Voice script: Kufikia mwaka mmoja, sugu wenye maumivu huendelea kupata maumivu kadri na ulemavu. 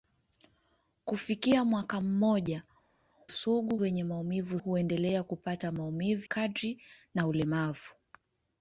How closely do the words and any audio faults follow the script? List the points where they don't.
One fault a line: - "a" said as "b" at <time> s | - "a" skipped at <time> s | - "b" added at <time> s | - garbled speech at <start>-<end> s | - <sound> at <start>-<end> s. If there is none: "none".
none